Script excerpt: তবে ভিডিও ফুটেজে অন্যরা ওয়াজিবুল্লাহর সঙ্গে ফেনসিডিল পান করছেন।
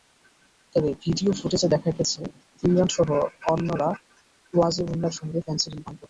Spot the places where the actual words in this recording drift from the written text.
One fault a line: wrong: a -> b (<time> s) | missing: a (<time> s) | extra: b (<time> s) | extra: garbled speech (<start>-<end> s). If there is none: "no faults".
extra: দেখা গেছে ইমরানসহ (1.7 s)